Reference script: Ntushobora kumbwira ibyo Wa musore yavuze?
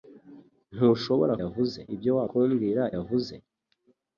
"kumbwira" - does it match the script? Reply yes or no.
no